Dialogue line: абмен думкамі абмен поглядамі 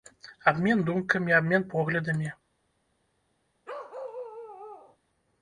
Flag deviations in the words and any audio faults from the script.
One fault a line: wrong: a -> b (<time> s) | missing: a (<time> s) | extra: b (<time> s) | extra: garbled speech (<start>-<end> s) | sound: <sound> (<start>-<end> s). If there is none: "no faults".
sound: bark (3.6-5.0 s)